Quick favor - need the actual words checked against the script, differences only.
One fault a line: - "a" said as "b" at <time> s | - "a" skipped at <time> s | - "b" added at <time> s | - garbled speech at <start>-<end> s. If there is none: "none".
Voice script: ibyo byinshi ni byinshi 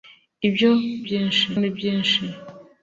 none